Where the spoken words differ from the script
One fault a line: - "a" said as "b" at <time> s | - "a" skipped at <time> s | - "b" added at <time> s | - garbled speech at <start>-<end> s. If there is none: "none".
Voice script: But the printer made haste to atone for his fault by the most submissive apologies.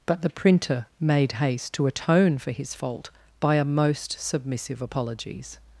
- "the" said as "a" at 3.5 s